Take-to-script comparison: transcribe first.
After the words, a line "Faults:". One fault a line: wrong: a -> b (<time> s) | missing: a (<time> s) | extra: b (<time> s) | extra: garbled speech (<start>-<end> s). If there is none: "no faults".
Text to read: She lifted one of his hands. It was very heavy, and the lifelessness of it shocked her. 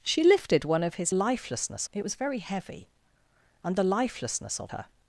She lifted one of his lifelessness. It was very heavy, and the lifelessness of her.
Faults:
wrong: hands -> lifelessness (1.1 s)
missing: it shocked (4.7 s)